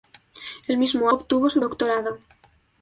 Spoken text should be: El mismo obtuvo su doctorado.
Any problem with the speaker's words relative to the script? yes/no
no